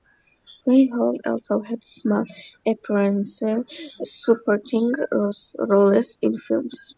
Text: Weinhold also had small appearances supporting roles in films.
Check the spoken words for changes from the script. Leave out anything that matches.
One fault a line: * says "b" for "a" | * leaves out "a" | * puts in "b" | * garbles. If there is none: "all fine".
all fine